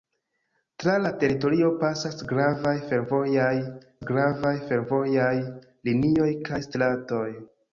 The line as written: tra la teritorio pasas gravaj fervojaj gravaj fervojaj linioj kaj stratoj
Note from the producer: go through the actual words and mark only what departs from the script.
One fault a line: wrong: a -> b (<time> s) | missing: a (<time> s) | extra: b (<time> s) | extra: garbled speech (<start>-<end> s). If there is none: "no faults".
no faults